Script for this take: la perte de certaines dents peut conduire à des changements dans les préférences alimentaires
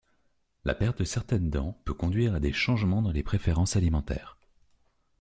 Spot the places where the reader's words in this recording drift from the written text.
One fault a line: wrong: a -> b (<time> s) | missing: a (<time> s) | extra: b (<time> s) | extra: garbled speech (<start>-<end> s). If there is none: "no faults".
no faults